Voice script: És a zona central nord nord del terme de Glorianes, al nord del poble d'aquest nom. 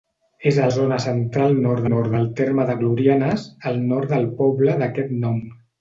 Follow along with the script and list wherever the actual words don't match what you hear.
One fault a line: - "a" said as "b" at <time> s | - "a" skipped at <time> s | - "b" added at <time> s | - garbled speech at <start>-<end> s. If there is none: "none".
none